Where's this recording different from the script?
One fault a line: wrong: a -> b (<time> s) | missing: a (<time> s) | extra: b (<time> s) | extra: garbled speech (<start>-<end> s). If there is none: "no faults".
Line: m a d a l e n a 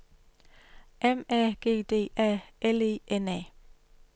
extra: g (1.6 s)